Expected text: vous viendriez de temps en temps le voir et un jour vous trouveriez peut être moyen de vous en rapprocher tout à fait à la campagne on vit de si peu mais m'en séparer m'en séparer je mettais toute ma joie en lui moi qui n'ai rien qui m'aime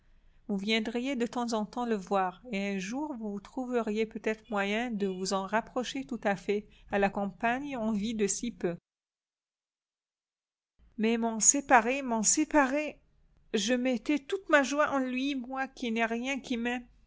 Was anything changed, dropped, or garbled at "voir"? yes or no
no